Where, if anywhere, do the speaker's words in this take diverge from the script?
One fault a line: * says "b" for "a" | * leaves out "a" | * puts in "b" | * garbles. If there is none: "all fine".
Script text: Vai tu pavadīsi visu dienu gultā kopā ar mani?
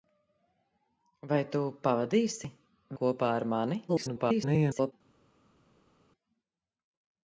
* leaves out "visu dienu gultā"
* garbles